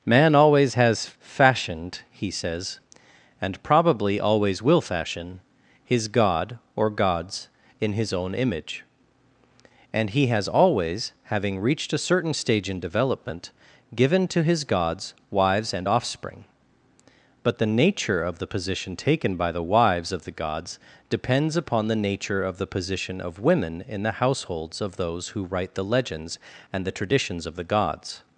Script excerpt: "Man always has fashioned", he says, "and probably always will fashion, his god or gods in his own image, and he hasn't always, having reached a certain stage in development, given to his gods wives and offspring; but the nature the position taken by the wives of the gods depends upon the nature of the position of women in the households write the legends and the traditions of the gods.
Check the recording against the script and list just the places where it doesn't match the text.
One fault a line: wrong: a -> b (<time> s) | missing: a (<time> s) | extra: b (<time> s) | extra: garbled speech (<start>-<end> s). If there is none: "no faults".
wrong: hasn't -> has (10.3 s)
extra: of (18.2 s)
extra: of those who (24.8 s)